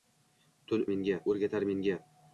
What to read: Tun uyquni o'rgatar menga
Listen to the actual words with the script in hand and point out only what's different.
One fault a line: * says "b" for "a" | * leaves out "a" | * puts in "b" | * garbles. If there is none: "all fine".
* says "menga" for "uyquni"